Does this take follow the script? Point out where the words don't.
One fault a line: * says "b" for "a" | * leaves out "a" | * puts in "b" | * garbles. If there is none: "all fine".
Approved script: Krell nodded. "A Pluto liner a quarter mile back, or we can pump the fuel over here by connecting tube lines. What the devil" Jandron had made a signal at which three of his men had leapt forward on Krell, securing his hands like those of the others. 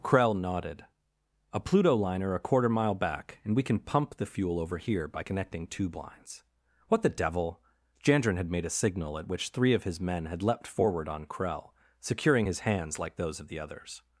* says "and" for "or"